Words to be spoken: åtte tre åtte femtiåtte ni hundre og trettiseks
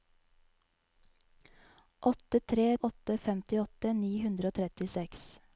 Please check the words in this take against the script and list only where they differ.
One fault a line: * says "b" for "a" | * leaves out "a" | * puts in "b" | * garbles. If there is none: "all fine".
all fine